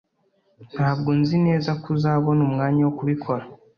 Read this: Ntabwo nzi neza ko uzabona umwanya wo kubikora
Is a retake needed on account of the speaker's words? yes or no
no